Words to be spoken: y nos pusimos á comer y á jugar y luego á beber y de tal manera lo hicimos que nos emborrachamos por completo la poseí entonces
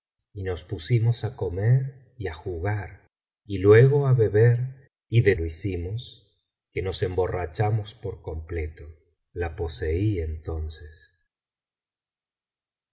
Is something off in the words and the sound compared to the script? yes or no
yes